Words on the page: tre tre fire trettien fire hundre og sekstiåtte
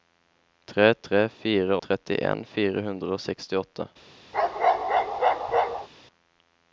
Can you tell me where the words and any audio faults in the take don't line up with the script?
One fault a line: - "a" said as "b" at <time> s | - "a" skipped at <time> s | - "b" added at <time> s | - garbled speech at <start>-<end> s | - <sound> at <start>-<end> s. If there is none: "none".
- bark at 4.3-5.9 s